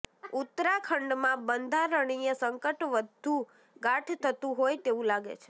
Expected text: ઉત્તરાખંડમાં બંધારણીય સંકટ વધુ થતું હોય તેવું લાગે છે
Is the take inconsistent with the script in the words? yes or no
yes